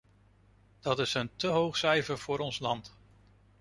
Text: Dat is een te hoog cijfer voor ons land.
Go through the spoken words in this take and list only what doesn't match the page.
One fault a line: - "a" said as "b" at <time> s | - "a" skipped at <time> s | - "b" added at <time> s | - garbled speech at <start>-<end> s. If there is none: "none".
none